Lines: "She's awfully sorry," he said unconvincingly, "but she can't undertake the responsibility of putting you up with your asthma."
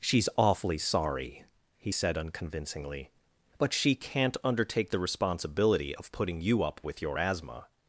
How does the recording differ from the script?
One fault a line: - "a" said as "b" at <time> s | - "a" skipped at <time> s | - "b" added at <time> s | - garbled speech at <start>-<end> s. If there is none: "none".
none